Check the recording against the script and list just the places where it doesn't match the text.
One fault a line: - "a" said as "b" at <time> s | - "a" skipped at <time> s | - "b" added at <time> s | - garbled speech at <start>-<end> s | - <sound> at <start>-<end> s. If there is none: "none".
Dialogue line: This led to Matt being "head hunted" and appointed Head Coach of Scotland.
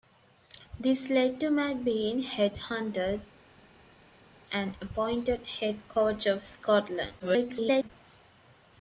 - garbled speech at 7.2-7.9 s